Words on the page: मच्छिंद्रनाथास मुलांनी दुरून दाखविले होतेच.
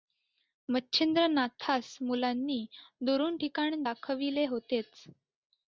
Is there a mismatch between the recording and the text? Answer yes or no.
yes